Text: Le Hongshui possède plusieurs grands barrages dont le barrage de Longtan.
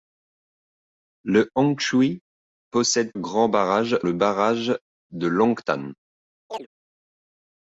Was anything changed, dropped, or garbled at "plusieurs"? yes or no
yes